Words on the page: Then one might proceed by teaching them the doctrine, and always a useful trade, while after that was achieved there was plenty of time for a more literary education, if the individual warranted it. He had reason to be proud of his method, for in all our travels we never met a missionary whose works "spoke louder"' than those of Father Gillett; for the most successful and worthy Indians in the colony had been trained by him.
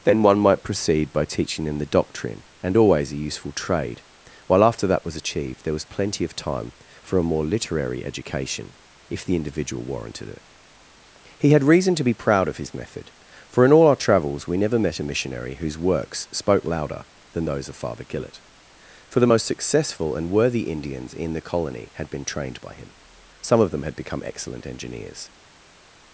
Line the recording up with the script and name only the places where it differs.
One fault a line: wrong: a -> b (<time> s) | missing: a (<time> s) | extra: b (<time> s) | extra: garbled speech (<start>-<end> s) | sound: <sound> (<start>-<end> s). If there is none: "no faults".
extra: Some of them had become excellent engineers (23.4 s)